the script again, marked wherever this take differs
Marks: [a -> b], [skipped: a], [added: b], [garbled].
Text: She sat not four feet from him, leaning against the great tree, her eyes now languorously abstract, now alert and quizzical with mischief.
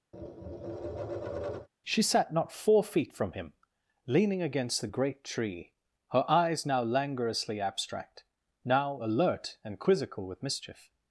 She sat not four feet from him, leaning against the great tree, her eyes now languorously abstract, now alert and quizzical with mischief.